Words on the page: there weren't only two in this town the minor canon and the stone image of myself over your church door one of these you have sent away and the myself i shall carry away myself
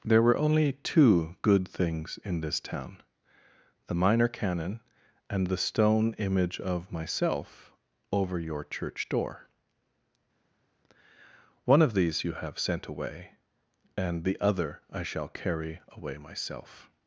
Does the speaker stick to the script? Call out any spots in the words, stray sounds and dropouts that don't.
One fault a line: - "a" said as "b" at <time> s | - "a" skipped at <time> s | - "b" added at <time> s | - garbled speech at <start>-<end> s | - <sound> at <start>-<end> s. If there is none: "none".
- "weren't" said as "were" at 0.2 s
- "good things" added at 1.4 s
- "myself" said as "other" at 14.4 s